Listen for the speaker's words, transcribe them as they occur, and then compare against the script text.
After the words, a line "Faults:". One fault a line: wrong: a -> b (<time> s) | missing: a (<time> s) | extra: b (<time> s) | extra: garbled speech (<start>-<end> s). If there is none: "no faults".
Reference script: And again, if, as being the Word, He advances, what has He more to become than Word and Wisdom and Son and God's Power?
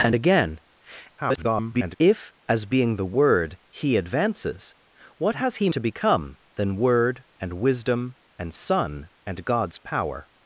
And again, [garbled] if, as being the Word, He advances, what has He to become than Word and Wisdom and Son and God's Power?
Faults:
extra: garbled speech (1.2-2.0 s)
missing: more (5.7 s)